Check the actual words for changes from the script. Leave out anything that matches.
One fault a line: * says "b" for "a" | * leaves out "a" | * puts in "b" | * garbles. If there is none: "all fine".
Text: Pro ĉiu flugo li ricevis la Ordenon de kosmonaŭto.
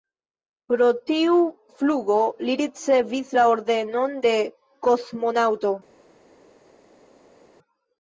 * says "tiu" for "ĉiu"